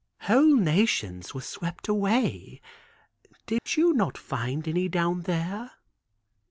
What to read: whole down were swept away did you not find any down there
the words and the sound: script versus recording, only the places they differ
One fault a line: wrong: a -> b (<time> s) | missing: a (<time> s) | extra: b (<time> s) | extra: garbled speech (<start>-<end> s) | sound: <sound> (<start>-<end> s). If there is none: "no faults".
wrong: down -> nations (0.6 s)
sound: dropout (3.6-3.7 s)